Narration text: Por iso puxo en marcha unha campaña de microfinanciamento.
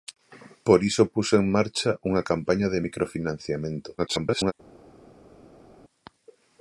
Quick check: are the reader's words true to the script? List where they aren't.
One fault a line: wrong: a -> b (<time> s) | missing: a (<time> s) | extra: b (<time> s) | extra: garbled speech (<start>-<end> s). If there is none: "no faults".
extra: garbled speech (4.0-4.5 s)